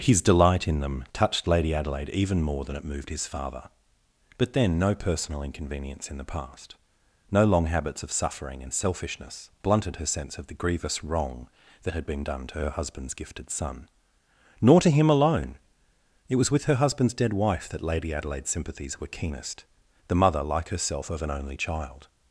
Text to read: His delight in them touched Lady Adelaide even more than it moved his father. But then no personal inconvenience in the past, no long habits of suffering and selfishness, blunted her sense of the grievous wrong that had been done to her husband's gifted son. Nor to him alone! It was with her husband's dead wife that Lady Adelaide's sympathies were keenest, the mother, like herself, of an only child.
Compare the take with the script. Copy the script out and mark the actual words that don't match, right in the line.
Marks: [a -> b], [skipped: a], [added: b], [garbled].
His delight in them touched Lady Adelaide even more than it moved his father. But then no personal inconvenience in the past, no long habits of suffering and selfishness, blunted her sense of the grievous wrong that had been done to her husband's gifted son. Nor to him alone! It was with her husband's dead wife that Lady Adelaide's sympathies were keenest, the mother, like herself, of an only child.